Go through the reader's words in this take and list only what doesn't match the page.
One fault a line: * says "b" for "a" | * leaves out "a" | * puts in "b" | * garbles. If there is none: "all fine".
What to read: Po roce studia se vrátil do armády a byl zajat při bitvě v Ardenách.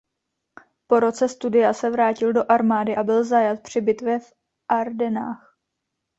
all fine